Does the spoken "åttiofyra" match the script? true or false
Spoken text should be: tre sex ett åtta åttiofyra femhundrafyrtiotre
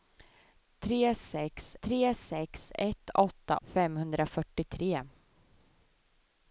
false